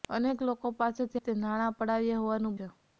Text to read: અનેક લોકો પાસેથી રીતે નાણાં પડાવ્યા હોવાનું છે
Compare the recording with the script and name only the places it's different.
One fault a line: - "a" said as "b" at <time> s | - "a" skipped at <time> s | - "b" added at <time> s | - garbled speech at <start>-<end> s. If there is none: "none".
none